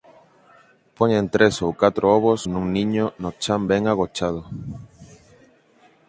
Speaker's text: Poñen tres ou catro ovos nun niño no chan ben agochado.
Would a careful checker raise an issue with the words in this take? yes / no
no